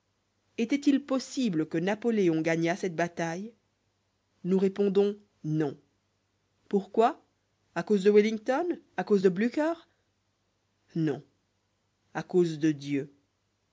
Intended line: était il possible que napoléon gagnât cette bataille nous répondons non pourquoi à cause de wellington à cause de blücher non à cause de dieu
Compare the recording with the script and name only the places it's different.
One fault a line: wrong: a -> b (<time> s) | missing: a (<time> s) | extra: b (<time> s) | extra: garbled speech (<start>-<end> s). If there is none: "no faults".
no faults